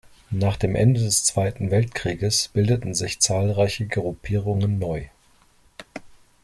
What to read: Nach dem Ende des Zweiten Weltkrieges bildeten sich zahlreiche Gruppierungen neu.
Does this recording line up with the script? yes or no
yes